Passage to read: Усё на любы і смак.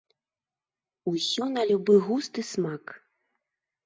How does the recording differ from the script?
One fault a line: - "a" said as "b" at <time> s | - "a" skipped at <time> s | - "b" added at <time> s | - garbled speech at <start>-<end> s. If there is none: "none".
- "густ" added at 2.1 s